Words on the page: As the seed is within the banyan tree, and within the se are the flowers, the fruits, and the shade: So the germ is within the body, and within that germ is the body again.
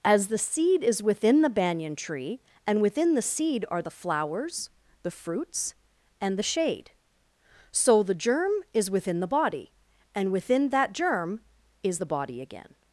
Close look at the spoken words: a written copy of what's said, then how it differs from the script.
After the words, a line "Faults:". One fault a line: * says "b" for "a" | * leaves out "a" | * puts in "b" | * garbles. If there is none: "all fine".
As the seed is within the banyan tree, and within the seed are the flowers, the fruits, and the shade: So the germ is within the body, and within that germ is the body again.
Faults:
* says "seed" for "se"